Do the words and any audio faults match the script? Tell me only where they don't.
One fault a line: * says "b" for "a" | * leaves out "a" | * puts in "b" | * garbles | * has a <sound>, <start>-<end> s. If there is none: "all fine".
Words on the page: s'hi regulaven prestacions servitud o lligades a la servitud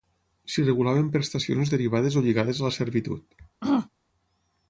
* says "derivades" for "servitud"
* has a throat clearing, 3.6-3.9 s